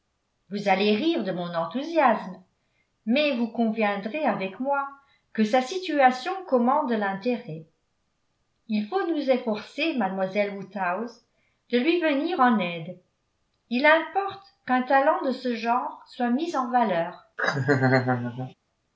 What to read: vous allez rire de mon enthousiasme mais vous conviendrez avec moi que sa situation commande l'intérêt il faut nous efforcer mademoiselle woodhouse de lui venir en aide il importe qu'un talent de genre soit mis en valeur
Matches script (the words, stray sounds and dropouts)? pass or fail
fail